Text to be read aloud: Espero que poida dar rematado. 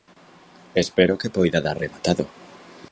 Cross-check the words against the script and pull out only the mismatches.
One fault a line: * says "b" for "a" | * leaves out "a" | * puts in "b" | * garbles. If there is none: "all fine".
all fine